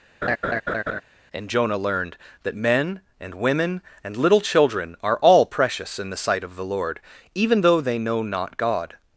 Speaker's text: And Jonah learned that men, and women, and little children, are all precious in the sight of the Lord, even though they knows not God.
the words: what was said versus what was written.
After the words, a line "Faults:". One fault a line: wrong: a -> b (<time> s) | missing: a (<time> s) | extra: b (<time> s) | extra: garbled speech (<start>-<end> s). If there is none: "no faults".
And Jonah learned that men, and women, and little children, are all precious in the sight of the Lord, even though they know not God.
Faults:
wrong: knows -> know (8.0 s)